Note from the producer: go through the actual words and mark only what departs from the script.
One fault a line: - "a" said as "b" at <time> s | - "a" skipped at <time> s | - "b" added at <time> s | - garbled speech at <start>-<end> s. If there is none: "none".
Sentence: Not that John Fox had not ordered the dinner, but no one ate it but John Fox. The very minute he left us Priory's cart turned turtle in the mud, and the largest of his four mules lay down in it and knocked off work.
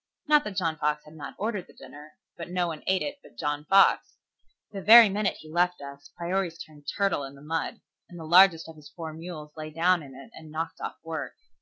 - "cart" skipped at 6.6 s